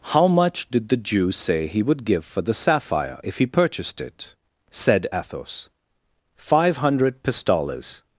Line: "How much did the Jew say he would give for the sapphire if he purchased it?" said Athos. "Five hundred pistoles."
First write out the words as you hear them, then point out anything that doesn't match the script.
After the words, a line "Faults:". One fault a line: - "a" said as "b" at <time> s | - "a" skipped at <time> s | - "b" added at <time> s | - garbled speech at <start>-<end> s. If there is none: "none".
"How much did the Jew say he would give for the sapphire if he purchased it?" said Athos. "Five hundred pistoles."
Faults:
none